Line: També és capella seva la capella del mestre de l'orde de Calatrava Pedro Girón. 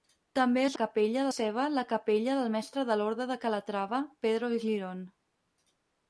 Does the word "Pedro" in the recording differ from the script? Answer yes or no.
no